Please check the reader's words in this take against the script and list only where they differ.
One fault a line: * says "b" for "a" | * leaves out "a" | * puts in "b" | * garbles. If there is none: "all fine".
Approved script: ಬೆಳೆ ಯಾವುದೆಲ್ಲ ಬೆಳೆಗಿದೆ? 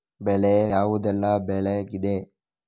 all fine